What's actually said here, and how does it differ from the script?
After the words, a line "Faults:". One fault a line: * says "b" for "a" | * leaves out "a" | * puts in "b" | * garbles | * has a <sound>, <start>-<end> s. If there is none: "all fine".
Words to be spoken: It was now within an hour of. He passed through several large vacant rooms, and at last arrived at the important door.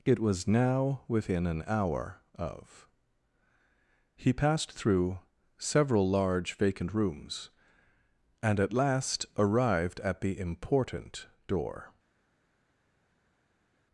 It was now within an hour of. He passed through several large vacant rooms, and at last arrived at the important door.
Faults:
all fine